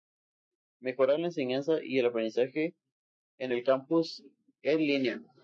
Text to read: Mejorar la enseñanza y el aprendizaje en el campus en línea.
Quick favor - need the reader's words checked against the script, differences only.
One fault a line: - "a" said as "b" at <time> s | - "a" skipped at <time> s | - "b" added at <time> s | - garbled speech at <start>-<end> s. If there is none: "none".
none